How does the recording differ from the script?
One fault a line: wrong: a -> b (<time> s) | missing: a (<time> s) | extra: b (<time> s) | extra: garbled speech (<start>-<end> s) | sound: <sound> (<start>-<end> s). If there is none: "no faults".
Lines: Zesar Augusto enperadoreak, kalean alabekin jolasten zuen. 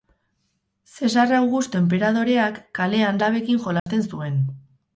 sound: dropout (3.8-3.9 s)